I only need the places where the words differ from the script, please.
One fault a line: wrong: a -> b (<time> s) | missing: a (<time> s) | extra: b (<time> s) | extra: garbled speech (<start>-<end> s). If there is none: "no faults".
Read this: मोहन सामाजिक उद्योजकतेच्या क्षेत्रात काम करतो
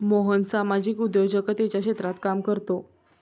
no faults